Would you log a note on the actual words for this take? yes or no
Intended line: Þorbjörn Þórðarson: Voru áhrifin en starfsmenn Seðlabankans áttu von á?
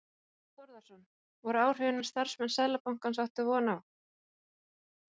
no